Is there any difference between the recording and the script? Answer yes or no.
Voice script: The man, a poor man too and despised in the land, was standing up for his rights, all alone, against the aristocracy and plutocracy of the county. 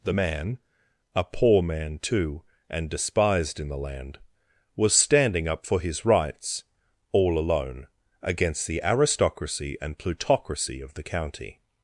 no